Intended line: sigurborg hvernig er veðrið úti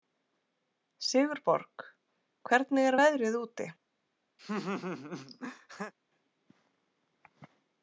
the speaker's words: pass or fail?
pass